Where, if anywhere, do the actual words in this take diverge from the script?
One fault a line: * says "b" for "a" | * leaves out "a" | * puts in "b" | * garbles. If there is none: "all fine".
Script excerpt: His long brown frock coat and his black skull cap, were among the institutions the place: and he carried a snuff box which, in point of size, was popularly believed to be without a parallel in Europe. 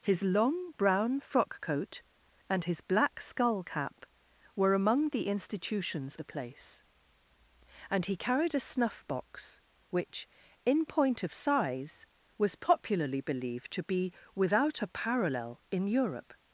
all fine